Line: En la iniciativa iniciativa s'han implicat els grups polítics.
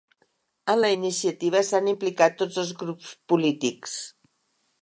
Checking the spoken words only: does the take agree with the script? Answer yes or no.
no